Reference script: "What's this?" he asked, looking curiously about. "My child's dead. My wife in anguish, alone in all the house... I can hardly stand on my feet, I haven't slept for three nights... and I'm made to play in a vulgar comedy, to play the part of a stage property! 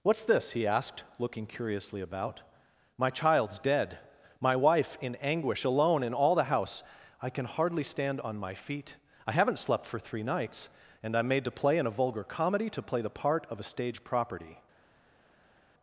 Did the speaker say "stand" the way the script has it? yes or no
yes